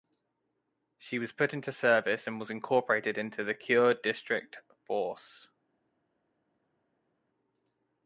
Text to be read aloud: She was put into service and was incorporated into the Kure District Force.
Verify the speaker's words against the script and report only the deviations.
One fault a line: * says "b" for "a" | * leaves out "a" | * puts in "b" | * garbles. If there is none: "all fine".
all fine